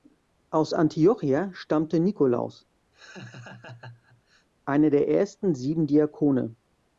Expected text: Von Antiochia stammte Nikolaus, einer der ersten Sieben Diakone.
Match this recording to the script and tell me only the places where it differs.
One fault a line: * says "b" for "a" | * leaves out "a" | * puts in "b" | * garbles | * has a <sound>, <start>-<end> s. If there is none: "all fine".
* says "Aus" for "Von"
* has a laugh, 2.9-4.5 s